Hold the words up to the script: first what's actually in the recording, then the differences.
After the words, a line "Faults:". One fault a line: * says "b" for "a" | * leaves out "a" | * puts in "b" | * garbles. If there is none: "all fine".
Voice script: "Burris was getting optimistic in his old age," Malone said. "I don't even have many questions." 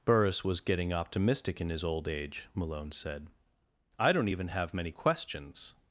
"Burris was getting optimistic in his old age," Malone said. "I don't even have many questions."
Faults:
all fine